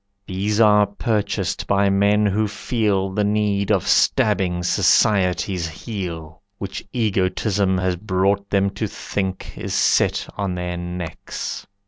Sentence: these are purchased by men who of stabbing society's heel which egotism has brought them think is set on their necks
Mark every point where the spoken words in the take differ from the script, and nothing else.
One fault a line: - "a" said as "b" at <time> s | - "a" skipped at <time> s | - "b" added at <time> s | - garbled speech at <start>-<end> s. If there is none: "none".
- "feel the need" added at 2.5 s
- "to" added at 8.8 s